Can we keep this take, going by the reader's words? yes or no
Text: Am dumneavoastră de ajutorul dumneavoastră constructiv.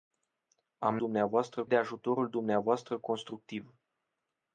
yes